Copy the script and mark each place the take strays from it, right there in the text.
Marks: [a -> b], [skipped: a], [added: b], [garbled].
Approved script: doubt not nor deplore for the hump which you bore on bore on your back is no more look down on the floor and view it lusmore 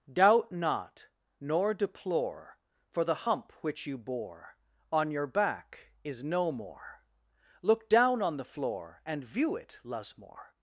doubt not nor deplore for the hump which you bore on [skipped: bore on] your back is no more look down on the floor and view it lusmore